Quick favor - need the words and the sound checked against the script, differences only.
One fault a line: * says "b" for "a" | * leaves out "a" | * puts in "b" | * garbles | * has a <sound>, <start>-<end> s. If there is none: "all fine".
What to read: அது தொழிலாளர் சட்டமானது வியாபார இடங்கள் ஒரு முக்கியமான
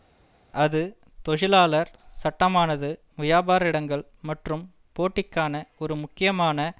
* puts in "மற்றும் போட்டிக்கான"